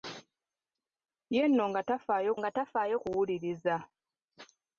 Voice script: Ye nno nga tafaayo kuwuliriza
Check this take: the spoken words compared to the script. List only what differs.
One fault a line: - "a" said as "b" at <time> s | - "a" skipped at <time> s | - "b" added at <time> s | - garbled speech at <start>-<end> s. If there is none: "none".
- "nga tafaayo" added at 2.4 s